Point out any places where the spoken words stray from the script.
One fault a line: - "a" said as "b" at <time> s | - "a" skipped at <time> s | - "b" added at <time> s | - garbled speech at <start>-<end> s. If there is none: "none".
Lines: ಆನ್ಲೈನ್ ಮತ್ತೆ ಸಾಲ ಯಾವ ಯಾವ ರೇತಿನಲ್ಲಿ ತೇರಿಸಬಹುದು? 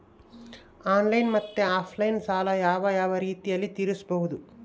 - "ಆಫ್ಲೈನ್" added at 1.7 s